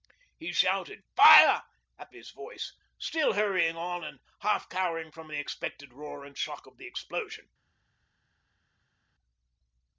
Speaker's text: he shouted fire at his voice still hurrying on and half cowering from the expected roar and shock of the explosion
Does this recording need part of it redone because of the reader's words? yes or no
no